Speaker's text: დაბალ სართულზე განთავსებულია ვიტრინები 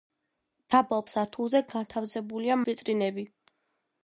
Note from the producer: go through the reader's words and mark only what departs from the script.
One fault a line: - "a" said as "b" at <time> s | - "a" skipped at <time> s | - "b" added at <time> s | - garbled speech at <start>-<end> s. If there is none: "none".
none